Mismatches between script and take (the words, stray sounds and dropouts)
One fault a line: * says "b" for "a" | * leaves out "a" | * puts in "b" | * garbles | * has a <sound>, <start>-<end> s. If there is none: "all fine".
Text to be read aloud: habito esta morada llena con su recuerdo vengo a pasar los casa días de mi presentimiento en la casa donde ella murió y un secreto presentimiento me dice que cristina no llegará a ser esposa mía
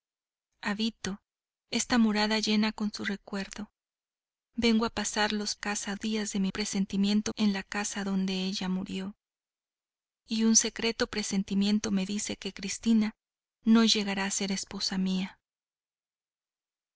all fine